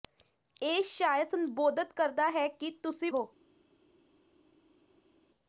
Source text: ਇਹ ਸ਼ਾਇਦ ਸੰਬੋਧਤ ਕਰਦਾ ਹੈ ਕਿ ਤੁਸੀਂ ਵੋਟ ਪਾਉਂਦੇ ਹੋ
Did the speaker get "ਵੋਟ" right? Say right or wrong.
wrong